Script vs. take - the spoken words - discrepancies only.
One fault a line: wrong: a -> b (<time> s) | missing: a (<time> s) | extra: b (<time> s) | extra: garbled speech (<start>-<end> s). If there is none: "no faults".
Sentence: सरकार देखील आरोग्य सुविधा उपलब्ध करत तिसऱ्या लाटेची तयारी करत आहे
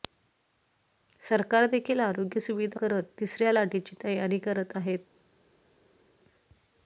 missing: उपलब्ध (2.8 s)